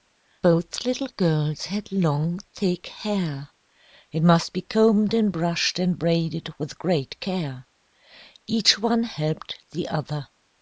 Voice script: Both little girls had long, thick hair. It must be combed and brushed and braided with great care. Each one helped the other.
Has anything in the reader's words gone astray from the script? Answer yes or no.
no